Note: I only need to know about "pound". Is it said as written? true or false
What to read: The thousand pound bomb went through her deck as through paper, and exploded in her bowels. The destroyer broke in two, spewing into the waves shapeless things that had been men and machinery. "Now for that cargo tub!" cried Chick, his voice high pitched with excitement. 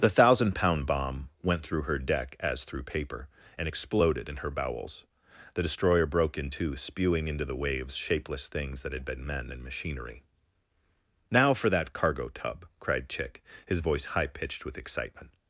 true